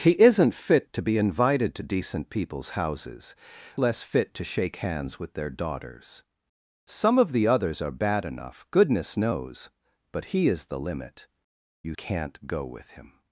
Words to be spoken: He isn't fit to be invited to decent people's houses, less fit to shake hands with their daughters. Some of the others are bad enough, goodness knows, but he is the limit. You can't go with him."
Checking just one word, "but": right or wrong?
right